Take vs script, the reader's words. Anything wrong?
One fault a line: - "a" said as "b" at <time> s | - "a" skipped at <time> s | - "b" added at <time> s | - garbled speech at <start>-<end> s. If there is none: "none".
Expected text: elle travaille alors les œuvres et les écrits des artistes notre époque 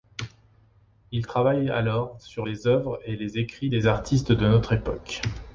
- "elle" said as "il" at 1.1 s
- "sur" added at 2.2 s
- "de" added at 4.3 s